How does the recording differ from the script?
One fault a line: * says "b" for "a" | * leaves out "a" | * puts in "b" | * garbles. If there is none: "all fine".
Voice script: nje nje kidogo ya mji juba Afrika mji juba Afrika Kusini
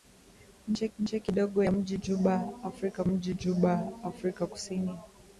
all fine